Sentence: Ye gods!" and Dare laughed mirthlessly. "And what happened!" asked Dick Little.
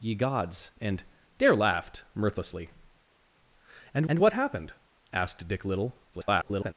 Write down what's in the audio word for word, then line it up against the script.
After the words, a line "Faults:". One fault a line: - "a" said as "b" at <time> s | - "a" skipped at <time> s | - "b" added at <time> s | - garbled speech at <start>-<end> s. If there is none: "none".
Ye gods!" and Dare laughed mirthlessly. "And and what happened!" asked Dick Little. [garbled]
Faults:
- "and" added at 4.1 s
- garbled speech at 6.1-6.7 s